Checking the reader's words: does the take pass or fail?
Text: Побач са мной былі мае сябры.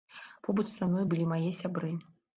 pass